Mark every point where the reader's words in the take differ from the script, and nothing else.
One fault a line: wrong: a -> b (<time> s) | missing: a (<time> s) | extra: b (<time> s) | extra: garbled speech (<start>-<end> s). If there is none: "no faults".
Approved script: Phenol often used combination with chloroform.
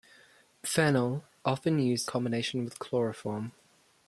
no faults